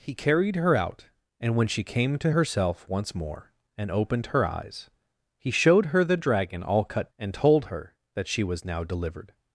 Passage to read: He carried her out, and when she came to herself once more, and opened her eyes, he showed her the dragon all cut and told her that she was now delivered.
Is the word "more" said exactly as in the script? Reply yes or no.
yes